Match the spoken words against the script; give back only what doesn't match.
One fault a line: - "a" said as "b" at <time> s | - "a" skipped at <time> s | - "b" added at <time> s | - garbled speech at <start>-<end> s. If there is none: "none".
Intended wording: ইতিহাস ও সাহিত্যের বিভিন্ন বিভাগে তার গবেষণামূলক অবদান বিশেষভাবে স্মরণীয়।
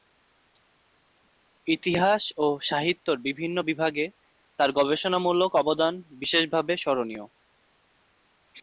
none